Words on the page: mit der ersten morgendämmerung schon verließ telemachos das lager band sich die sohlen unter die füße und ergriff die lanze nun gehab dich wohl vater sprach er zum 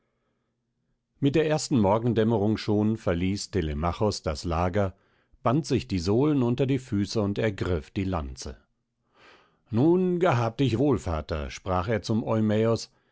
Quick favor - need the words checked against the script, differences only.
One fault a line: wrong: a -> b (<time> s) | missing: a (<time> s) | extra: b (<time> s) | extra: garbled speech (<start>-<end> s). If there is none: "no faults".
no faults